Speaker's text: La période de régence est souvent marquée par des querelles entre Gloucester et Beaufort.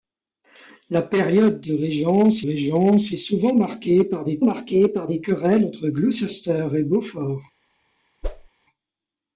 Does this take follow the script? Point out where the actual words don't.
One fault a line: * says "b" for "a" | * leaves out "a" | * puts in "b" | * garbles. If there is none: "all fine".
* puts in "régence"
* puts in "marquée par des"